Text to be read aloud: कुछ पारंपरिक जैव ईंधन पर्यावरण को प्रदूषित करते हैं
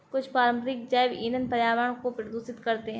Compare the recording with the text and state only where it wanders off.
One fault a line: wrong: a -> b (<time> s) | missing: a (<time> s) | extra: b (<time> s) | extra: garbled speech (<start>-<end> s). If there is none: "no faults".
no faults